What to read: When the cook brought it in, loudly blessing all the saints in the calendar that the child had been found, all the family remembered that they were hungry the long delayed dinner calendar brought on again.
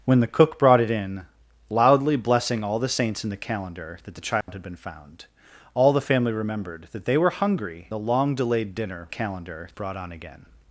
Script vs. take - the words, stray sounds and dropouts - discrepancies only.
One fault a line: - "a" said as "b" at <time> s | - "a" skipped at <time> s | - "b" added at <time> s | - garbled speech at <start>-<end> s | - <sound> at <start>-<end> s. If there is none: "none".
- dropout at 4.4-4.5 s